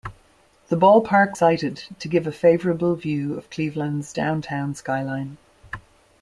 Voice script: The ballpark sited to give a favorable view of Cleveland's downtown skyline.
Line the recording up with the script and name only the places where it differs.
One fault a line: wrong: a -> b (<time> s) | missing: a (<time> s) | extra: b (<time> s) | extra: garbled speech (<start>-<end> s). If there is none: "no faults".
no faults